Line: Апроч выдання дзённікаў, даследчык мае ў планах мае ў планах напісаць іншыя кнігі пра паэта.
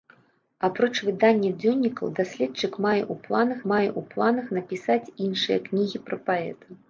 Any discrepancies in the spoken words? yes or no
no